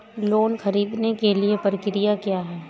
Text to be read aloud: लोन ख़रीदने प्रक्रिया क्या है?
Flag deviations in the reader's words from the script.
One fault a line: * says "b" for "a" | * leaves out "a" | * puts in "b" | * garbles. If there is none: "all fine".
* puts in "के लिए"